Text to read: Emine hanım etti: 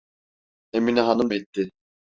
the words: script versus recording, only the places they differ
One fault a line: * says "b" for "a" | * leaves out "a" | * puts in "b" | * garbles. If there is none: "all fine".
all fine